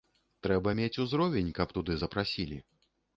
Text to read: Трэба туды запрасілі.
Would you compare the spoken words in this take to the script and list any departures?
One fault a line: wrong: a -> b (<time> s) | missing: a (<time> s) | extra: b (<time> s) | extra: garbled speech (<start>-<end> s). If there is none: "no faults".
extra: мець узровень каб (0.8 s)